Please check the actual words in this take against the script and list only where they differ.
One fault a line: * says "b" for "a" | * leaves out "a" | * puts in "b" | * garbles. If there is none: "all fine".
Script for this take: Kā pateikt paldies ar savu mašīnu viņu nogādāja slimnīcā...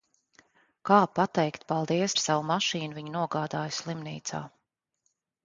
all fine